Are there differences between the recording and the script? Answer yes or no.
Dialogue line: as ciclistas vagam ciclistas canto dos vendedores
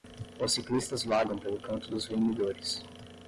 yes